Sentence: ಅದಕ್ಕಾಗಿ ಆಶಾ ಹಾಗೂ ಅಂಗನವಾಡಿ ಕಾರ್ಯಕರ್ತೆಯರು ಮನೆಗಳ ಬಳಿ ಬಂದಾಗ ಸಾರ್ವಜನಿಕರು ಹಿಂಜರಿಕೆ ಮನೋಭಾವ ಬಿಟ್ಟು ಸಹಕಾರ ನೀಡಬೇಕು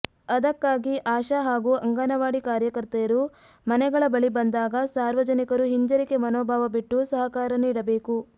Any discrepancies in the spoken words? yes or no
no